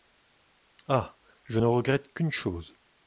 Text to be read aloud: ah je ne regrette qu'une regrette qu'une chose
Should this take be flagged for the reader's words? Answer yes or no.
yes